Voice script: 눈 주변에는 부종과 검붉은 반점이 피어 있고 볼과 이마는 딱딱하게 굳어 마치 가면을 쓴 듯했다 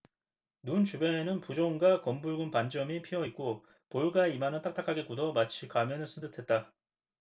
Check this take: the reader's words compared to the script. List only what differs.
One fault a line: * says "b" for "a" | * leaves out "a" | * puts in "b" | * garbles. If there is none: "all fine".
all fine